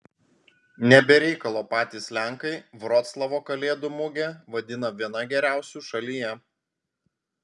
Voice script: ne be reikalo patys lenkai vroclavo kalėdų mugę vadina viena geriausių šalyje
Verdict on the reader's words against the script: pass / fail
pass